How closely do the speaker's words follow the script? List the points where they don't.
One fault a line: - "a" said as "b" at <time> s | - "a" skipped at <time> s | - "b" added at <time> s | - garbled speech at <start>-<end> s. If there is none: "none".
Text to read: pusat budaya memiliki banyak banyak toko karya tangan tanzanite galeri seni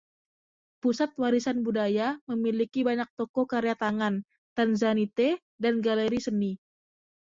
- "warisan" added at 1.2 s
- "banyak" skipped at 3.0 s
- "dan" added at 5.6 s